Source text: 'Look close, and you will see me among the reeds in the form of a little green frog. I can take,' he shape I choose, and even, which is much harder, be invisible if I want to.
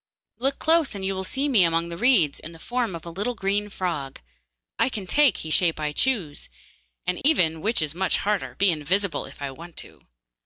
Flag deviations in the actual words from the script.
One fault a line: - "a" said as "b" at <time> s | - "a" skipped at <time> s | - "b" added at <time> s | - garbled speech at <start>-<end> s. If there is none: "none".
none